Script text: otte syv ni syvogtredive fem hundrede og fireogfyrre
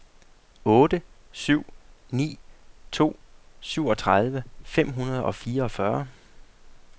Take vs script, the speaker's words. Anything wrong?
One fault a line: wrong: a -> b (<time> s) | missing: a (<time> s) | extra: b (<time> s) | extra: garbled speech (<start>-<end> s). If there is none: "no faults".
extra: to (2.9 s)